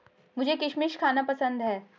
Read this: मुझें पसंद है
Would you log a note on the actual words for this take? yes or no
yes